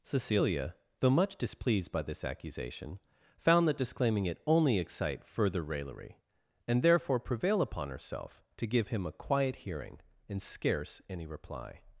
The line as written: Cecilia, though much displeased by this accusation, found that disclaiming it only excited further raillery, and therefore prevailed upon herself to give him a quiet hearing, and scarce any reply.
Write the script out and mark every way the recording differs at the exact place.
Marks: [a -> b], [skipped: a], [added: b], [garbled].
Cecilia, though much displeased by this accusation, found that disclaiming it only [excited -> excite] further raillery, and therefore [prevailed -> prevail] upon herself to give him a quiet hearing, and scarce any reply.